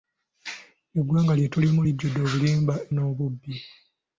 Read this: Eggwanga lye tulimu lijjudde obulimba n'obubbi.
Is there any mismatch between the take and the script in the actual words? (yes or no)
no